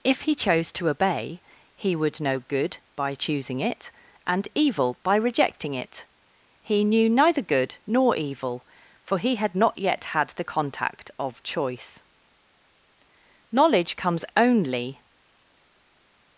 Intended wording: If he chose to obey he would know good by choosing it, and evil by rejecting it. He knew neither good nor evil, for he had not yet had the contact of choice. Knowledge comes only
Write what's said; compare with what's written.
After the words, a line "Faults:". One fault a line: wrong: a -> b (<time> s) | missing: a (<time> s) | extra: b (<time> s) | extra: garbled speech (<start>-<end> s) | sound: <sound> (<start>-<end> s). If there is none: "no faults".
If he chose to obey he would know good by choosing it, and evil by rejecting it. He knew neither good nor evil, for he had not yet had the contact of choice. Knowledge comes only
Faults:
no faults